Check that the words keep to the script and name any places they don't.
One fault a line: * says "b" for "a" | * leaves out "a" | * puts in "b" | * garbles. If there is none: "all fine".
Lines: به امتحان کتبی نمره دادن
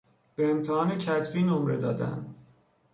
all fine